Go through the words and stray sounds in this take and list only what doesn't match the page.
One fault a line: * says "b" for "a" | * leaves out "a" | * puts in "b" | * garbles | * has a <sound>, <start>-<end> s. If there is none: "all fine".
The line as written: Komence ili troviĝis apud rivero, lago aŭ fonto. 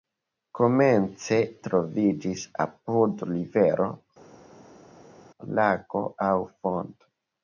* leaves out "ili"